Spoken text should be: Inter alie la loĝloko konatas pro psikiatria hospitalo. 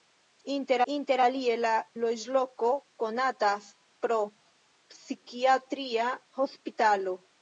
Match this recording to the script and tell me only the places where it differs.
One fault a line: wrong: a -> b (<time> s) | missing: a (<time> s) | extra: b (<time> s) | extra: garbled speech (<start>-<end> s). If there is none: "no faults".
extra: inter (0.9 s)